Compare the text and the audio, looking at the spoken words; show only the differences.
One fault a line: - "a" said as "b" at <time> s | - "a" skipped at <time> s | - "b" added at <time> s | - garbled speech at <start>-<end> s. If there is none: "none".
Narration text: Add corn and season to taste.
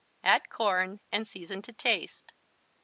none